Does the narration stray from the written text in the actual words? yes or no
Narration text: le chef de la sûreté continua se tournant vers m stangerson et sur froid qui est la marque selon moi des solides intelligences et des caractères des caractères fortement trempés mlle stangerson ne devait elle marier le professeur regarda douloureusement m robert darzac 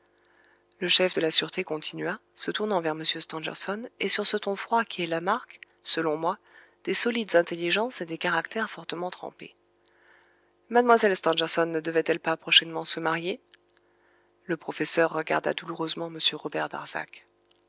yes